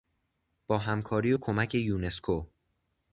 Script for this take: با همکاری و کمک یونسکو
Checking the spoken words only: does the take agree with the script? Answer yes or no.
yes